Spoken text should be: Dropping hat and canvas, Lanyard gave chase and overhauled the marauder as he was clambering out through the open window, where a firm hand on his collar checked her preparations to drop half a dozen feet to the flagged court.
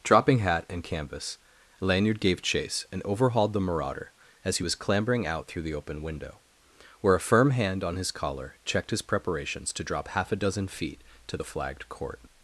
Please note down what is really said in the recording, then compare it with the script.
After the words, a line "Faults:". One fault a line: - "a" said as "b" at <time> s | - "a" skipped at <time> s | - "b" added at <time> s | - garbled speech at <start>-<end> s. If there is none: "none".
Dropping hat and canvas, Lanyard gave chase and overhauled the marauder as he was clambering out through the open window, where a firm hand on his collar checked his preparations to drop half a dozen feet to the flagged court.
Faults:
- "her" said as "his" at 8.9 s